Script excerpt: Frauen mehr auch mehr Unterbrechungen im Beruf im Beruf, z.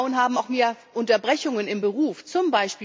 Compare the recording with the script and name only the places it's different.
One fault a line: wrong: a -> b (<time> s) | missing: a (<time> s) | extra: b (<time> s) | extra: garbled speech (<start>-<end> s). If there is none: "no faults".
wrong: mehr -> haben (0.2 s)
missing: im Beruf (2.2 s)